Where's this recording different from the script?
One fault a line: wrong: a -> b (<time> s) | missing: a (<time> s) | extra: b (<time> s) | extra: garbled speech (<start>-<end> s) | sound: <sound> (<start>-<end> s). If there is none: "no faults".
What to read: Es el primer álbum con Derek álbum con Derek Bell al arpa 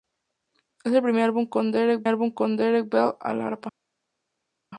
no faults